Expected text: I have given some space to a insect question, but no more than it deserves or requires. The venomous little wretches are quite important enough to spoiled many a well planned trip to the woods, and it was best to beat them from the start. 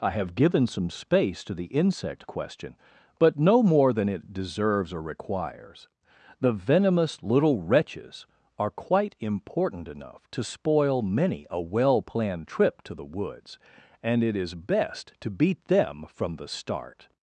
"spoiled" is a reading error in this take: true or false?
true